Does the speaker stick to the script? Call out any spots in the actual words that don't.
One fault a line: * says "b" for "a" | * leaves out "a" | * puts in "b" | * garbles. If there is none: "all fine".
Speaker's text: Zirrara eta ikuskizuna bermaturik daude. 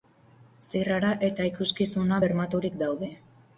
all fine